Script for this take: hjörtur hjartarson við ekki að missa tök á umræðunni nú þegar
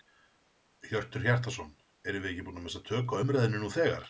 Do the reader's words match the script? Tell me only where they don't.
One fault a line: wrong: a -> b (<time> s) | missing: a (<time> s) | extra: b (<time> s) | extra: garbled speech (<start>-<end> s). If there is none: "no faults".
extra: erum (2.1 s)
extra: búin (2.5 s)